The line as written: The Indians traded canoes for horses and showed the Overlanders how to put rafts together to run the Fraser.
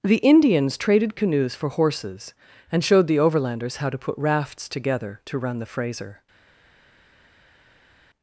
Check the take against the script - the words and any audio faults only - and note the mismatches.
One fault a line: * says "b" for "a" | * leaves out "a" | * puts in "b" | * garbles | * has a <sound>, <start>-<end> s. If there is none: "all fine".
all fine